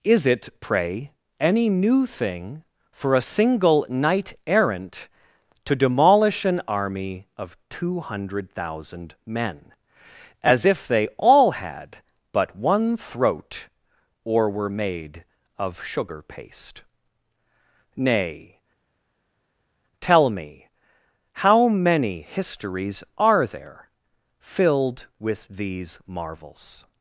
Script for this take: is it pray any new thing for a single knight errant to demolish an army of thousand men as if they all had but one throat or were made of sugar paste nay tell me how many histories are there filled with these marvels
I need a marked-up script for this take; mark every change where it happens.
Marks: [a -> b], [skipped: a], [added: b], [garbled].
is it pray any new thing for a single knight errant to demolish an army of [added: two hundred] thousand men as if they all had but one throat or were made of sugar paste nay tell me how many histories are there filled with these marvels